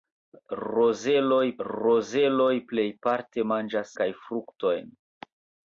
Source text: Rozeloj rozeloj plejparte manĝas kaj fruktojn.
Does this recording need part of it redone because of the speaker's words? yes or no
no